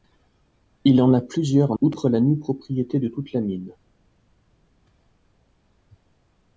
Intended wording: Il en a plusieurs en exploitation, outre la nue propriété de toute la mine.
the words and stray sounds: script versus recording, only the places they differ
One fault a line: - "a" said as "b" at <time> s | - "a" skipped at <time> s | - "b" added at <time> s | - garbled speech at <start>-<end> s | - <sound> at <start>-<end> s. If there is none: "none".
- "exploitation" skipped at 1.8 s